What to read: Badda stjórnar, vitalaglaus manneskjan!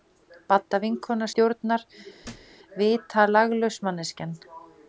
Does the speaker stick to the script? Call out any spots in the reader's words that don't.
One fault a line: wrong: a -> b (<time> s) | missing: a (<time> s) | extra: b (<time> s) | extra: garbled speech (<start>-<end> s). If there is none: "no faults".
extra: vinkona (0.8 s)